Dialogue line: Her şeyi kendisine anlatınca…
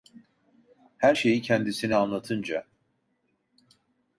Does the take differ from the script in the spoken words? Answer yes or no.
no